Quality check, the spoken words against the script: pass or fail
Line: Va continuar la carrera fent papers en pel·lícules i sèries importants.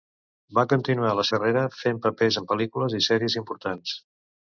pass